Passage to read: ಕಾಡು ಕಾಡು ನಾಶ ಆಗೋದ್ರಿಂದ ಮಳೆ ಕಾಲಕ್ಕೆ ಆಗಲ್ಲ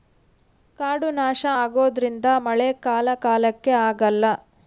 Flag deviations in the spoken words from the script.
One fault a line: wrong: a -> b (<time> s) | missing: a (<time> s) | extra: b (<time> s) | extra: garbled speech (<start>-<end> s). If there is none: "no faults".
missing: ಕಾಡು (1.1 s)
extra: ಕಾಲ (2.8 s)